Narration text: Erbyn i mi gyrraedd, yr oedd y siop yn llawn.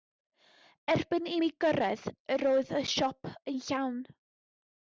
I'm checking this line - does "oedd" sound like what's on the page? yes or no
yes